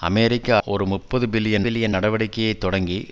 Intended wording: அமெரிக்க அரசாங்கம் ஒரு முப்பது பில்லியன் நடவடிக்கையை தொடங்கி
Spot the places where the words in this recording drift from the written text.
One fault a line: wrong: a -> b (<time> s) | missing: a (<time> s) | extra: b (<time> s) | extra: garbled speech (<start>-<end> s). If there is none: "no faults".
missing: அரசாங்கம் (0.6 s)
extra: பில்லியன் (1.6 s)